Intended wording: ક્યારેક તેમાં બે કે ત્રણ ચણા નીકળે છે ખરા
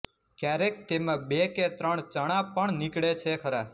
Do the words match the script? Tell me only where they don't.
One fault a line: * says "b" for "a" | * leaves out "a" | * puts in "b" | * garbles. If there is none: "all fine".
* puts in "પણ"